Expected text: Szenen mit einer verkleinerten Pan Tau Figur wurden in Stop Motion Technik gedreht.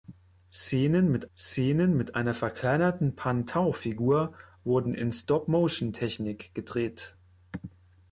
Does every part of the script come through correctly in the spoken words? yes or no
no